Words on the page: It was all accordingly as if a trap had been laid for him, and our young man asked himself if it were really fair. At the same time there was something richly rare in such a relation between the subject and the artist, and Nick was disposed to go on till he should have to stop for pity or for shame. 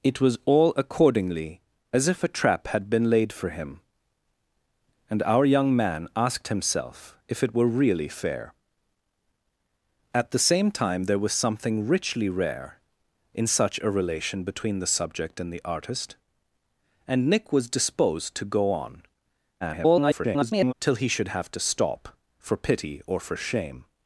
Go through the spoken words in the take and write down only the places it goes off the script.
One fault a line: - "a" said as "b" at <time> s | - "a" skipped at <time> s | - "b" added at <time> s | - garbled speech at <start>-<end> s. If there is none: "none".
- garbled speech at 19.6-20.7 s